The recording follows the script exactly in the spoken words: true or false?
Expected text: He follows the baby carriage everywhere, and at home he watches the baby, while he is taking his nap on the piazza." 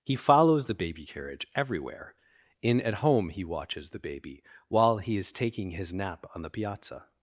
false